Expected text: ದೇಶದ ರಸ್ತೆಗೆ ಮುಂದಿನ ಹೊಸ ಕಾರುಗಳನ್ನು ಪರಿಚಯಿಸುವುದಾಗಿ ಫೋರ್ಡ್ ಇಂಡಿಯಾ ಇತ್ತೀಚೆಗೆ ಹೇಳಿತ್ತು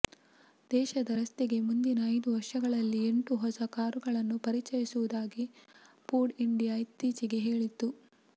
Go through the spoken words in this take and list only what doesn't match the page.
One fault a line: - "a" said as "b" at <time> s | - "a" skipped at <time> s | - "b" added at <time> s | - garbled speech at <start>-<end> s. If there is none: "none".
- "ಐದು ವರ್ಷಗಳಲ್ಲಿ ಎಂಟು" added at 2.1 s